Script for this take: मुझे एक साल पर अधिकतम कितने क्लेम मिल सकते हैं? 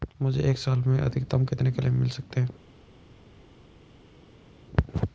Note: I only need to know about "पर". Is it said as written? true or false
false